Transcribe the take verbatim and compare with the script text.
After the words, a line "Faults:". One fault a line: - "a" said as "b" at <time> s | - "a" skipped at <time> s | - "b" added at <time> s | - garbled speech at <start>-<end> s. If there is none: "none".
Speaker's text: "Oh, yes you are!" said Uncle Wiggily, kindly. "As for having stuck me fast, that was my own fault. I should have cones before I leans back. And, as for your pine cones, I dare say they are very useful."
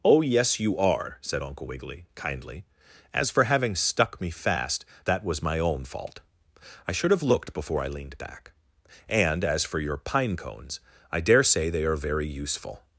"Oh, yes you are!" said Uncle Wiggily, kindly. "As for having stuck me fast, that was my own fault. I should have looked before I leaned back. And, as for your pine cones, I dare say they are very useful."
Faults:
- "cones" said as "looked" at 7.2 s
- "leans" said as "leaned" at 7.9 s